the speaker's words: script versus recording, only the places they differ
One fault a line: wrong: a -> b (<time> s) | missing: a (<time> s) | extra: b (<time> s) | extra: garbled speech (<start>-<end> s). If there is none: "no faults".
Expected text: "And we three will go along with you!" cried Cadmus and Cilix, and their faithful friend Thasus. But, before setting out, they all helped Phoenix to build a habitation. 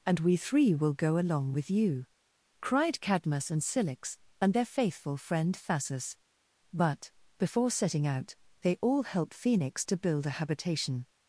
wrong: helped -> help (9.0 s)